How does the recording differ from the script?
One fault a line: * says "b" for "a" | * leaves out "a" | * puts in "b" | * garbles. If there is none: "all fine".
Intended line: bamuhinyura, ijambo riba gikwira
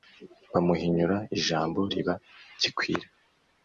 all fine